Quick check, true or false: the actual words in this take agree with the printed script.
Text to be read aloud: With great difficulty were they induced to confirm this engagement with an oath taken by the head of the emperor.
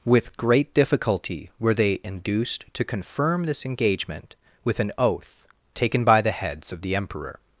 false